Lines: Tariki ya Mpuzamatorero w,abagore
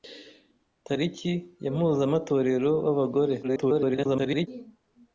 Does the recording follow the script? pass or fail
fail